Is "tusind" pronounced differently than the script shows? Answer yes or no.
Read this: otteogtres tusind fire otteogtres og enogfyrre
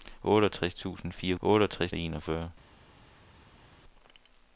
no